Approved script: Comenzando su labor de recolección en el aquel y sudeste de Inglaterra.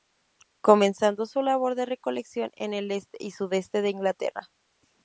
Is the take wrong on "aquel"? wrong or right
wrong